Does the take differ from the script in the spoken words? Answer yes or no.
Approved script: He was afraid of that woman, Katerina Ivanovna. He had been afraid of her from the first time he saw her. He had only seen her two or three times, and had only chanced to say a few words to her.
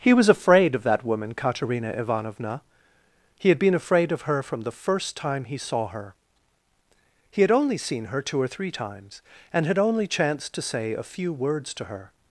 no